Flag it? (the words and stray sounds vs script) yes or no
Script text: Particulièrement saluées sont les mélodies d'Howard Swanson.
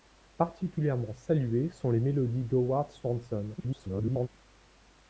yes